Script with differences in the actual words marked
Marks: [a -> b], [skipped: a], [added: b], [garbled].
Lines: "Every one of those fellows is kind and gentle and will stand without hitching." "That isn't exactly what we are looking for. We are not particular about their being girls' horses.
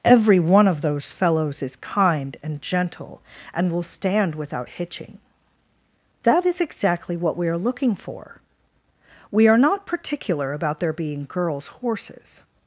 "Every one of those fellows is kind and gentle and will stand without hitching." "That [isn't -> is] exactly what we are looking for. We are not particular about their being girls' horses.